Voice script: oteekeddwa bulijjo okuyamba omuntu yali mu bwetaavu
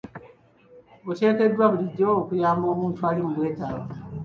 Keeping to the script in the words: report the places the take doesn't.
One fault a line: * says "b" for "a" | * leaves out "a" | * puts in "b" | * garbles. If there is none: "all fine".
* says "ali" for "yali"